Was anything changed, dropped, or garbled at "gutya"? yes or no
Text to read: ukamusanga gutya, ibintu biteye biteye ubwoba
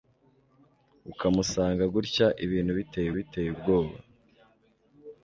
no